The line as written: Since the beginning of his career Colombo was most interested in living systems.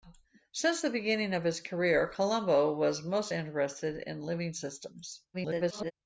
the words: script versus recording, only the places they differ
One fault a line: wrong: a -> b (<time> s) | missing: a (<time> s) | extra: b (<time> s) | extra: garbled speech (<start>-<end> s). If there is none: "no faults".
extra: garbled speech (5.3-5.9 s)